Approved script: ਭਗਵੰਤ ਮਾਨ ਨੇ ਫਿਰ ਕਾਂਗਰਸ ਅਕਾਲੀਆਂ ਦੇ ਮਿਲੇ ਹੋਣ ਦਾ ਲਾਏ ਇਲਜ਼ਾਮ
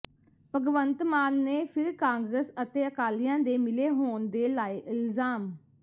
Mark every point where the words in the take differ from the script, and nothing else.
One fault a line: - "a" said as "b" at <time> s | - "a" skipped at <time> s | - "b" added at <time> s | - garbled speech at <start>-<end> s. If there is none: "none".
- "ਅਤੇ" added at 2.6 s
- "ਦਾ" said as "ਦੇ" at 4.3 s